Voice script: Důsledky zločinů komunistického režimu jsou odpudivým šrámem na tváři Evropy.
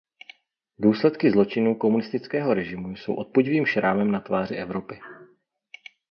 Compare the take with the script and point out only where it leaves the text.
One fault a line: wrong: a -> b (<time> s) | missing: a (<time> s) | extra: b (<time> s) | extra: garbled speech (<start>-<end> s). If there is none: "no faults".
no faults